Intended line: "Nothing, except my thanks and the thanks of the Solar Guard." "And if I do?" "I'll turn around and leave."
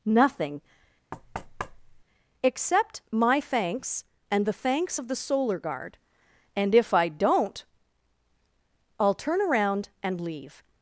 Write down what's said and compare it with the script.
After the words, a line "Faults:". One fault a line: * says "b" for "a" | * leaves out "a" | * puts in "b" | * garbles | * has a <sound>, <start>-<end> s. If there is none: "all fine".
"Nothing, except my thanks and the thanks of the Solar Guard." "And if I don't?" "I'll turn around and leave."
Faults:
* has a thud, 1.1-2.0 s
* says "don't" for "do"